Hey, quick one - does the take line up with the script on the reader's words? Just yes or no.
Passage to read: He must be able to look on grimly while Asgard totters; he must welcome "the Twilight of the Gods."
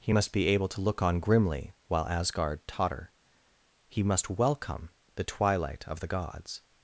no